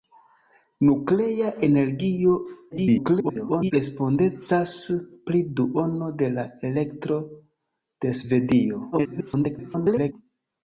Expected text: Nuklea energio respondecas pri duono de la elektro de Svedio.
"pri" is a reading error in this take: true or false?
false